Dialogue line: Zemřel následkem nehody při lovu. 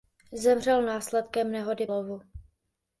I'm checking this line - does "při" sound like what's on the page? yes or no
no